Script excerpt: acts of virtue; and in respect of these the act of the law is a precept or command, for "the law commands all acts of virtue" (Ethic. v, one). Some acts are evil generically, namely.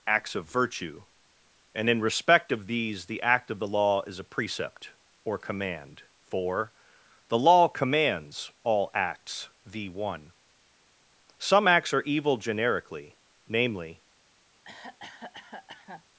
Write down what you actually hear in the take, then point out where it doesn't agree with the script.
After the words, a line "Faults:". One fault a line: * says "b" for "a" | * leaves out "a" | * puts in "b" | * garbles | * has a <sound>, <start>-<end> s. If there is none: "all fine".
acts of virtue; and in respect of these the act of the law is a precept or command, for "the law commands all acts. v, one). Some acts are evil generically, namely.
Faults:
* leaves out "of virtue Ethic"
* has a cough, 14.6-16.0 s